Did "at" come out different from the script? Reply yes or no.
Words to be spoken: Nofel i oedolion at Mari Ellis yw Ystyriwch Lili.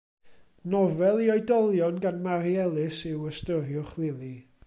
yes